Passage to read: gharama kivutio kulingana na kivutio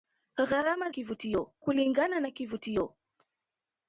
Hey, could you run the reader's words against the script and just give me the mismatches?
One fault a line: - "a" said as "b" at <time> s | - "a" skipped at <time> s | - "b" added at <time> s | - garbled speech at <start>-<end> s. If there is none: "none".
none